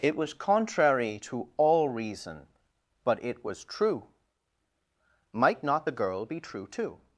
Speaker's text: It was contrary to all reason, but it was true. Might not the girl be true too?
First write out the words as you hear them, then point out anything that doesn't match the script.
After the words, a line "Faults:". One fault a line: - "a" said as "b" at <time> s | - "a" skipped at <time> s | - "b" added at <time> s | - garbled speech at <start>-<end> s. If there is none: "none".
It was contrary to all reason, but it was true. Might not the girl be true too?
Faults:
none